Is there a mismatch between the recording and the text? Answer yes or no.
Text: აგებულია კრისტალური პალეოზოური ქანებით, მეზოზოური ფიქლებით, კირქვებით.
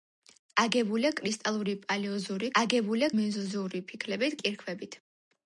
yes